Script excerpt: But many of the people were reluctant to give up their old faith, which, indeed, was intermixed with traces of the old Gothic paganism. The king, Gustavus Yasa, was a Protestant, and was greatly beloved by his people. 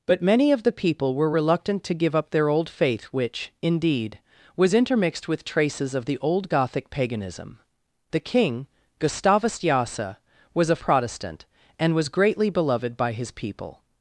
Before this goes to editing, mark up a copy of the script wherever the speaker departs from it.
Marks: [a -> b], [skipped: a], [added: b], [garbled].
But many of the people were reluctant to give up their old faith, which, indeed, was intermixed with traces of the old Gothic paganism. The king, Gustavus Yasa, was a Protestant, and was greatly beloved by his people.